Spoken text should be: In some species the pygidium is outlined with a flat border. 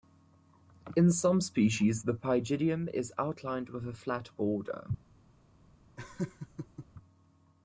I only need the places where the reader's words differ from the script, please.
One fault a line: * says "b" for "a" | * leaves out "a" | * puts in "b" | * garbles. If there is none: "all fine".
all fine